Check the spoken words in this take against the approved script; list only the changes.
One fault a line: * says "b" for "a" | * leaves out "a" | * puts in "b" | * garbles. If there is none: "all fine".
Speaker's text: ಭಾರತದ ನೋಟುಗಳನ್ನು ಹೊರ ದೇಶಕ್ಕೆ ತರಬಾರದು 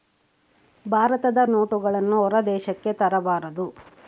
all fine